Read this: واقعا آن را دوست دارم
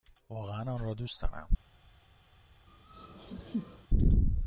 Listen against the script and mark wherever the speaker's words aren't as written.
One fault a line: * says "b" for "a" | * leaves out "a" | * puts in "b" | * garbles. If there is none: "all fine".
all fine